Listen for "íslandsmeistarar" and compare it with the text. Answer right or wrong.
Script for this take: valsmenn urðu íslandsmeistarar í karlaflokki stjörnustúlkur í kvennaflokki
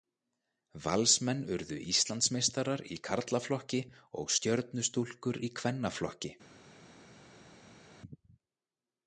right